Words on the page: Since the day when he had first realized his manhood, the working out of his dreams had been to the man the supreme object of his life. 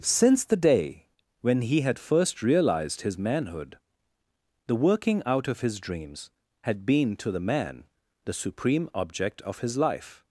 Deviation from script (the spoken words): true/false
false